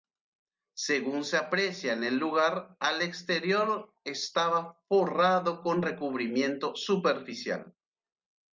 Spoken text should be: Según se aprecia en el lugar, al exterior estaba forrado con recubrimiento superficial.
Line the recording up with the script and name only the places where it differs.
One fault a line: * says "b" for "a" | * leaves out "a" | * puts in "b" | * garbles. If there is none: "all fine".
all fine